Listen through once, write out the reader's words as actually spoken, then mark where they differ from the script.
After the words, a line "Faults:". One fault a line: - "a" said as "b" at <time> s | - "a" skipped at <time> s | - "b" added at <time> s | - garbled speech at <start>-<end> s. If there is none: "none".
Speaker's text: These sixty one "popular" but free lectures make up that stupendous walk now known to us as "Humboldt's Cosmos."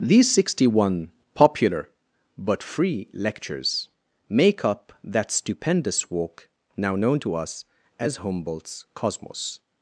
These sixty one "popular" but free lectures make up that stupendous walk now known to us as "Humboldt's Cosmos."
Faults:
none